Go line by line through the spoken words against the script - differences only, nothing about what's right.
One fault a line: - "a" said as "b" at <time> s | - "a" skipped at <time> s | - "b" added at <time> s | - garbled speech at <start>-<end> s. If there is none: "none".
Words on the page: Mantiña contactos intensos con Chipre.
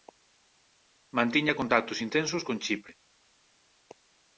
none